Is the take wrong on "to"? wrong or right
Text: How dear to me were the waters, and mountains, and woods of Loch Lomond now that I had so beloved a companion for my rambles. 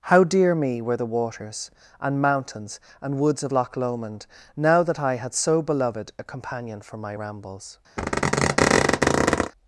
wrong